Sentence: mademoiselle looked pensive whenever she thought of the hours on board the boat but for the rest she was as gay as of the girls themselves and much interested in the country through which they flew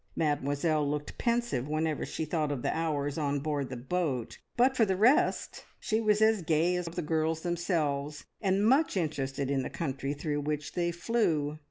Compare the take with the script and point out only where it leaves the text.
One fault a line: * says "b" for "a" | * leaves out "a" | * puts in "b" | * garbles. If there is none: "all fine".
all fine